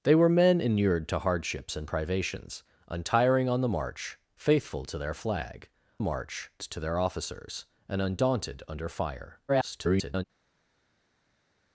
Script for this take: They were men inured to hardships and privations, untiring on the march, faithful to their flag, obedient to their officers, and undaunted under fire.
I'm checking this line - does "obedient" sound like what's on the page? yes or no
no